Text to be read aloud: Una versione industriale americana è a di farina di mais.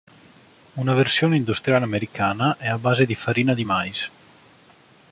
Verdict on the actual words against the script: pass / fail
fail